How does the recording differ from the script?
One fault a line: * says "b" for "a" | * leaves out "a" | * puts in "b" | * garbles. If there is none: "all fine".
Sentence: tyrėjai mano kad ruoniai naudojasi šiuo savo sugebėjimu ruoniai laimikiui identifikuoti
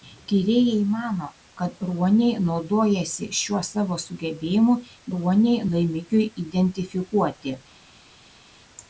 all fine